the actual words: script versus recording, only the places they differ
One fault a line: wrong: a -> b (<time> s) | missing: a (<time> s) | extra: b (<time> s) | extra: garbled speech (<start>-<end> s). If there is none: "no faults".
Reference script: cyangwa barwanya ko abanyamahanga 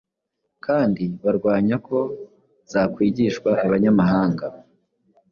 wrong: cyangwa -> kandi (0.7 s)
extra: zakwigishwa (2.7 s)